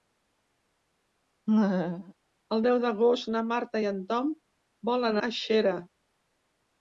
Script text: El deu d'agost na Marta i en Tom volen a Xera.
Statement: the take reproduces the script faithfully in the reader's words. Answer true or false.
true